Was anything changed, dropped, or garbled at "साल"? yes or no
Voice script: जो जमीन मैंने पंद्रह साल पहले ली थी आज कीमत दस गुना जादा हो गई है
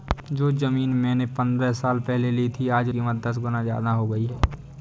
no